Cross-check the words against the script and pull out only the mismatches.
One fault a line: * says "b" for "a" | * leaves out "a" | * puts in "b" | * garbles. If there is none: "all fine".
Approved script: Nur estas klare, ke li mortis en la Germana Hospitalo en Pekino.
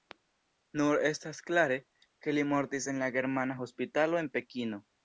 all fine